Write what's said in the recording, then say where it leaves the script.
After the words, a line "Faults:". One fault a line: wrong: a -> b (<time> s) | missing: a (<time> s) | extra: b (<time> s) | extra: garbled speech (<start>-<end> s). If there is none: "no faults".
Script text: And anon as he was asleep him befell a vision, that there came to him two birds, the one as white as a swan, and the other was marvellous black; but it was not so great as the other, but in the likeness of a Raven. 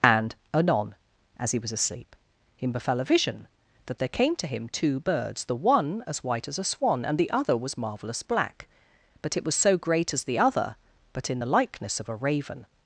And anon as he was asleep him befell a vision, that there came to him two birds, the one as white as a swan, and the other was marvellous black; but it was so great as the other, but in the likeness of a Raven.
Faults:
missing: not (9.5 s)